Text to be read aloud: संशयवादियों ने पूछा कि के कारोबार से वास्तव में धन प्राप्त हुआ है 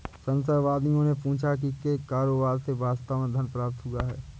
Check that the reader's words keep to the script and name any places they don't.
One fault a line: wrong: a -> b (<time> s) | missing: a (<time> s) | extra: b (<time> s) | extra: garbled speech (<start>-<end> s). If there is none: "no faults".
no faults